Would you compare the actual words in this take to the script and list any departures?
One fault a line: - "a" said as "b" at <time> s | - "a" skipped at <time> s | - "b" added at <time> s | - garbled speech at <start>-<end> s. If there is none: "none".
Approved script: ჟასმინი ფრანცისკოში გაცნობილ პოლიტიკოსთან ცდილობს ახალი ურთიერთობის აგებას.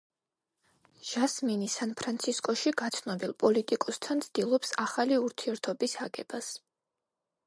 - "სან" added at 1.7 s